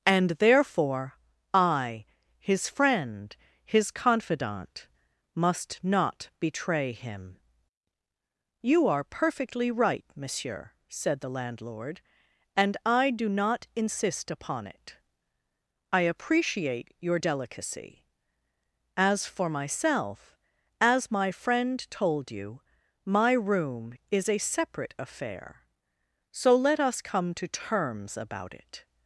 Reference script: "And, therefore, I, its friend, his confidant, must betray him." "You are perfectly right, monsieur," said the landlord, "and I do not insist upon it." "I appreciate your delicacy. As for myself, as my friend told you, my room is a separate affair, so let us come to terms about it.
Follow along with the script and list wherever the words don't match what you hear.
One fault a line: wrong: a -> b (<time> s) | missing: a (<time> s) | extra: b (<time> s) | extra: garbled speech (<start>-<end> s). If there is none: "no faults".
wrong: its -> his (2.4 s)
extra: not (5.8 s)